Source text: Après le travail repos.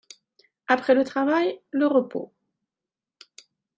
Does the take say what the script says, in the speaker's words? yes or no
no